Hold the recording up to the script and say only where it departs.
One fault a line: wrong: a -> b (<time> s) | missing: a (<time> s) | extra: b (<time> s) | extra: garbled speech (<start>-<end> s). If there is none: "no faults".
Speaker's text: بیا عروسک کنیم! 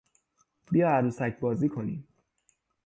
extra: بازی (1.4 s)